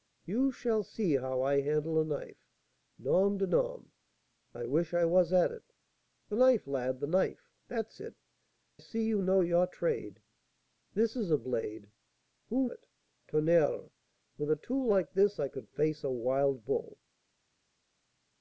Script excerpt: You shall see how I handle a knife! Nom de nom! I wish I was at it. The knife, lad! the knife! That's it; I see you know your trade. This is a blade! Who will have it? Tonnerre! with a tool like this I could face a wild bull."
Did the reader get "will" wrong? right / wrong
wrong